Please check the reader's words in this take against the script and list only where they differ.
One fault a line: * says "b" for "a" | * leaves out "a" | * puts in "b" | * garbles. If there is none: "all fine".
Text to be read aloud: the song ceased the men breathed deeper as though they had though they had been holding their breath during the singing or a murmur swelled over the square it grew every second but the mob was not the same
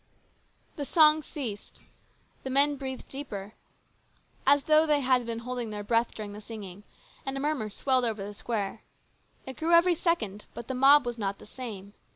* leaves out "though they had"
* says "and" for "or"